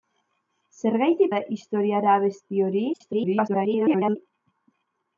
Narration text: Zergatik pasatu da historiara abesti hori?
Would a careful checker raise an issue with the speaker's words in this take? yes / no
yes